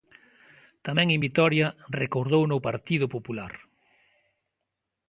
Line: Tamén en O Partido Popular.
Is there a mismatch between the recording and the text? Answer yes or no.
yes